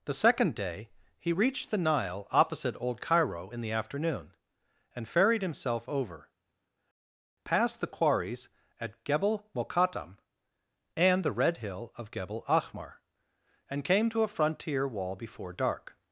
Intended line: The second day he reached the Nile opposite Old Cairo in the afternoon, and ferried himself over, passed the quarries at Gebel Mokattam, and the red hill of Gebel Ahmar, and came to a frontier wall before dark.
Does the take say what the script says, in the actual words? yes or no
yes